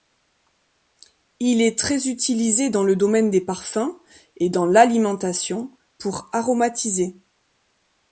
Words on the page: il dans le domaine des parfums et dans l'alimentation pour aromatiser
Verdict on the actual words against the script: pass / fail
fail